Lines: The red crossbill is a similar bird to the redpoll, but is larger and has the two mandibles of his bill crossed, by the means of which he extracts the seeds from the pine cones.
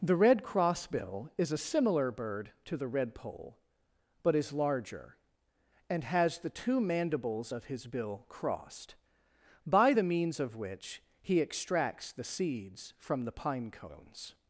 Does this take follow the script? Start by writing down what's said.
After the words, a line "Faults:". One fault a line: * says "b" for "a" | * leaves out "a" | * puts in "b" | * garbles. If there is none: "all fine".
The red crossbill is a similar bird to the redpoll, but is larger and has the two mandibles of his bill crossed, by the means of which he extracts the seeds from the pine cones.
Faults:
all fine